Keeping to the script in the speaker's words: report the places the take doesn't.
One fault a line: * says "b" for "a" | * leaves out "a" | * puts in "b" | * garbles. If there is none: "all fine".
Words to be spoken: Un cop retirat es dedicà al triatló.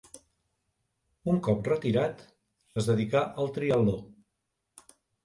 all fine